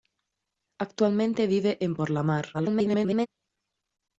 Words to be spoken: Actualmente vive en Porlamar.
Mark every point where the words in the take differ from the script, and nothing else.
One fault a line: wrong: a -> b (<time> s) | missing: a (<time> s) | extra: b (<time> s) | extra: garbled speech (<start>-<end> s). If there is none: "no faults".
extra: garbled speech (2.5-3.3 s)